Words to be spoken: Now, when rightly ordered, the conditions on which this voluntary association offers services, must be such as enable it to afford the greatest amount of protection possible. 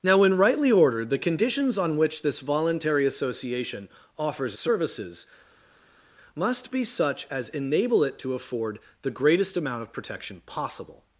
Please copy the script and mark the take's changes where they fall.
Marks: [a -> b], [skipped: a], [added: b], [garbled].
Now, when rightly ordered, the conditions on which this voluntary association offers services, must be such as enable it to afford the greatest amount of protection possible.